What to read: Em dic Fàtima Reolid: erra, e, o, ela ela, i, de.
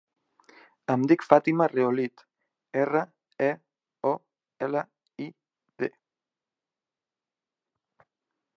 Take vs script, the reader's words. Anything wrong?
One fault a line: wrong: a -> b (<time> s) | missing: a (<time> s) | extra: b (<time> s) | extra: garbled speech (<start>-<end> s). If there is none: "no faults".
missing: ela (4.8 s)